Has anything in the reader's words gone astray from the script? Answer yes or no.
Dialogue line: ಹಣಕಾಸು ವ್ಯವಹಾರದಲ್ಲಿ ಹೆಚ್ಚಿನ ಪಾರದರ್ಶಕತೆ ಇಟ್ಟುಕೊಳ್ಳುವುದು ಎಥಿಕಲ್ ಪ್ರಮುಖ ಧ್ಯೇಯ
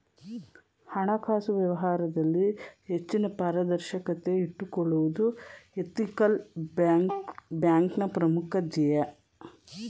yes